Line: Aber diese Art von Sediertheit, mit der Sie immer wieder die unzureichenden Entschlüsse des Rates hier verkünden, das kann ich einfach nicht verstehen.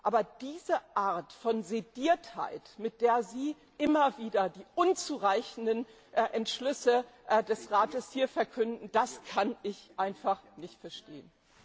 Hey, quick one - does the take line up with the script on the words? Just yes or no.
yes